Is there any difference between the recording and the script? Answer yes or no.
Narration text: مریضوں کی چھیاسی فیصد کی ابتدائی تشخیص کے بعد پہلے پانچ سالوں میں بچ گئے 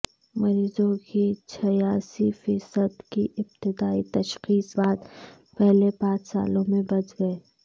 yes